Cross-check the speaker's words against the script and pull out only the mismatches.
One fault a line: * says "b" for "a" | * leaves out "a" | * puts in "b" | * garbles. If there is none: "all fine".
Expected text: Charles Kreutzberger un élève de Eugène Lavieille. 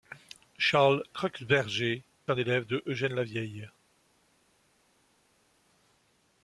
all fine